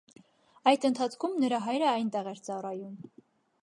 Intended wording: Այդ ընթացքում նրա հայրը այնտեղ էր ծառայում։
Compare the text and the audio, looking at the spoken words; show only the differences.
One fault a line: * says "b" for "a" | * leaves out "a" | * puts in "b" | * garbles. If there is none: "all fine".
all fine